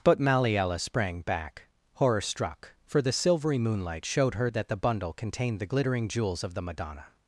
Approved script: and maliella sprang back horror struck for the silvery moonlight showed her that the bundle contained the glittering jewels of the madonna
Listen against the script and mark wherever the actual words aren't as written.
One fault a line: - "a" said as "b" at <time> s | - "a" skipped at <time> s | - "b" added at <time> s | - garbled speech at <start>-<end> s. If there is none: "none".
- "and" said as "but" at 0.0 s